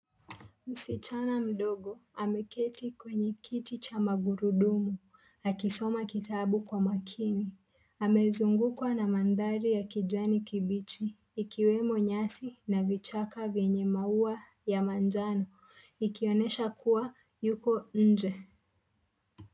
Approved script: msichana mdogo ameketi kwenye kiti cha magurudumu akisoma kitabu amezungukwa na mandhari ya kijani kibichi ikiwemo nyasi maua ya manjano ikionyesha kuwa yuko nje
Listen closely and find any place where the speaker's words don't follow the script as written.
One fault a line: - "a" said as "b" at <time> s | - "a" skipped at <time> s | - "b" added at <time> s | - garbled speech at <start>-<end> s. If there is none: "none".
- "kwa makini" added at 6.6 s
- "na vichaka vyenye" added at 12.7 s